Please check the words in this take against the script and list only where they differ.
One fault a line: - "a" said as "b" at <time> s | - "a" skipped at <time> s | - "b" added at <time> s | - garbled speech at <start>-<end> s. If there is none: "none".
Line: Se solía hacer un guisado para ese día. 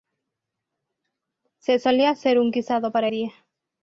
- "ese" skipped at 3.1 s